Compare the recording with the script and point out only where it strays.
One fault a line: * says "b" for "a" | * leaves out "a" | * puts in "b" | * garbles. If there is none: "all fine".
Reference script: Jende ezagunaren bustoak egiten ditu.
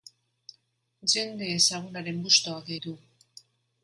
* leaves out "egiten"